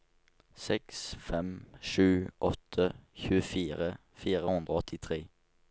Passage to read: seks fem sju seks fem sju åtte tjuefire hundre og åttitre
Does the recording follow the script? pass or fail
fail